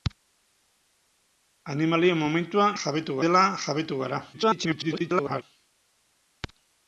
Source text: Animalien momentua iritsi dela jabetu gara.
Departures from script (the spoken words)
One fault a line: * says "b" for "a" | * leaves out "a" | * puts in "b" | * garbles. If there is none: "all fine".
* says "jabetu" for "iritsi"
* garbles